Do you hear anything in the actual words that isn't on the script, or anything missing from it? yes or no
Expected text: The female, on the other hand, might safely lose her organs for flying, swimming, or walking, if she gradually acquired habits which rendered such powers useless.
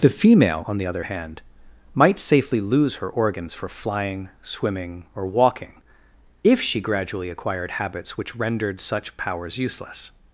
no